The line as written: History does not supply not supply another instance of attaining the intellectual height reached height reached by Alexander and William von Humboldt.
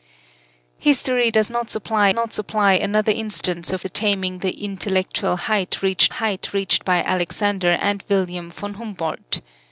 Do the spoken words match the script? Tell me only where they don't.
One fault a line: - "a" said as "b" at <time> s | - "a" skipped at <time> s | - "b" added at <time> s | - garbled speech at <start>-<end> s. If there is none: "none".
none